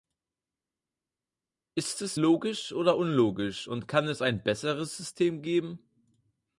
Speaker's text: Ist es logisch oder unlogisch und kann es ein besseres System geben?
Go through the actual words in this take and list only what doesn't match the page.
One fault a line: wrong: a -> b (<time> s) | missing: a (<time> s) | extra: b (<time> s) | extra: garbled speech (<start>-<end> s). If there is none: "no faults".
no faults